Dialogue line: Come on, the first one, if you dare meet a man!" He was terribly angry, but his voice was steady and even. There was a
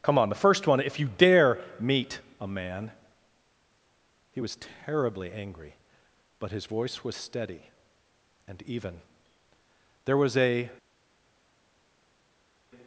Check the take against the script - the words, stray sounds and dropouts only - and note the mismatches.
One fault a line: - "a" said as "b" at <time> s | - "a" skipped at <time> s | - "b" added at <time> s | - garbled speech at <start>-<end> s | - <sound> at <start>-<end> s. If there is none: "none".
none